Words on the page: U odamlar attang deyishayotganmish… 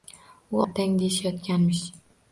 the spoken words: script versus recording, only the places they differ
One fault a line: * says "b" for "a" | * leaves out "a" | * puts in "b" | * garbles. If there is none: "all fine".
* leaves out "odamlar"